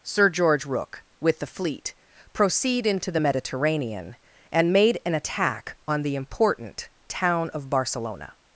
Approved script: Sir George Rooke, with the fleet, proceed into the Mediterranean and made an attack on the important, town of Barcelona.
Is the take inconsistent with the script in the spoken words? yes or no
no